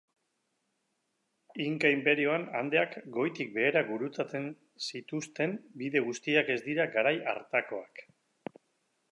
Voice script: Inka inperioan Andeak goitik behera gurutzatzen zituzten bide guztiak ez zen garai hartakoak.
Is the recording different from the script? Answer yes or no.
yes